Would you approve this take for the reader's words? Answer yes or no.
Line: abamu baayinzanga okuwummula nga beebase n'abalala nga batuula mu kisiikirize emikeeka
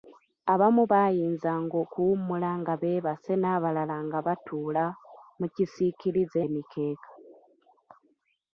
yes